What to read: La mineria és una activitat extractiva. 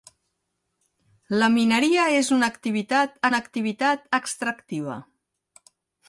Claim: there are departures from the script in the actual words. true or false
true